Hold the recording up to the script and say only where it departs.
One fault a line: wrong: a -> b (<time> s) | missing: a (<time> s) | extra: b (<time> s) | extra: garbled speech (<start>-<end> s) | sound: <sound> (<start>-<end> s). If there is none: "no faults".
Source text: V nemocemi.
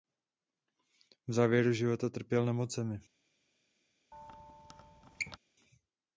extra: závěru života trpěl (1.3 s)
sound: squeak (4.1-5.4 s)